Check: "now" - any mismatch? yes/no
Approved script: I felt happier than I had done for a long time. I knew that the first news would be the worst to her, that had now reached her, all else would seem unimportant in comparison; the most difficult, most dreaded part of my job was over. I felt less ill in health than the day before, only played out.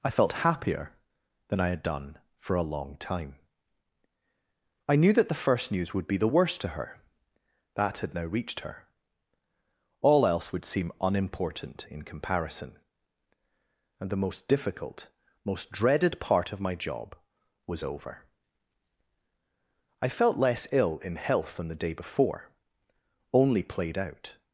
no